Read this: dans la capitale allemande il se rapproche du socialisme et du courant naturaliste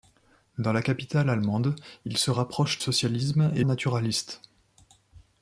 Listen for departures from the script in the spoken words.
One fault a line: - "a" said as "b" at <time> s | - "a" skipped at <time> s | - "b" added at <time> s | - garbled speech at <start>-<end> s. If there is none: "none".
- "du" skipped at 2.8 s
- "du courant" skipped at 3.6 s